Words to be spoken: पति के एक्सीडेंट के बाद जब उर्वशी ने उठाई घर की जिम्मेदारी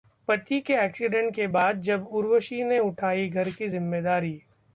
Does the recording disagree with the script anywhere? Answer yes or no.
no